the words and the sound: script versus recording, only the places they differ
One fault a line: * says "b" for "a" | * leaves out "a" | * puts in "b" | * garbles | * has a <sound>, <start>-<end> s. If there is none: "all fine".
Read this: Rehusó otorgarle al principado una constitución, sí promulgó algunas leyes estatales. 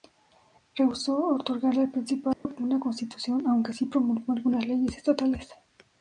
* has a dropout, 2.3-2.4 s
* puts in "aunque"